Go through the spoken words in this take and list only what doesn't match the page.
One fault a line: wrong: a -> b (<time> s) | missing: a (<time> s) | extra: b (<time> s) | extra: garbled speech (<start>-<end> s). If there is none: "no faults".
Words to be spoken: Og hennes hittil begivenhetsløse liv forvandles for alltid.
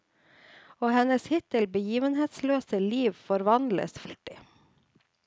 missing: for (4.0 s)